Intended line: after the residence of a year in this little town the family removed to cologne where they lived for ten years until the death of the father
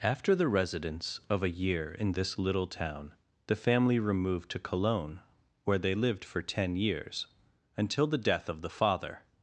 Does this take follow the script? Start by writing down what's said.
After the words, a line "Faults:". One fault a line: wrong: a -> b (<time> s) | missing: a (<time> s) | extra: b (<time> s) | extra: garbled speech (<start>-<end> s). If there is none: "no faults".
after the residence of a year in this little town the family removed to cologne where they lived for ten years until the death of the father
Faults:
no faults